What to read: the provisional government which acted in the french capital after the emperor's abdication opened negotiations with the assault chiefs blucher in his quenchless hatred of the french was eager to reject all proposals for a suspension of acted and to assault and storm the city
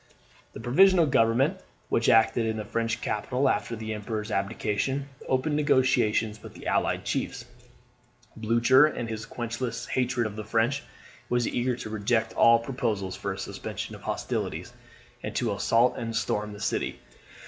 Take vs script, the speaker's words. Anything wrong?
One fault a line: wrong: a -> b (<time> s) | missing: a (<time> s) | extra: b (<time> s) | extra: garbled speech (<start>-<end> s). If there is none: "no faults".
wrong: assault -> allied (6.7 s)
wrong: acted -> hostilities (14.0 s)